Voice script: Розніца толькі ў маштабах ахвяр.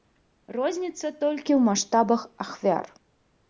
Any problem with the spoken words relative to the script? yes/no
no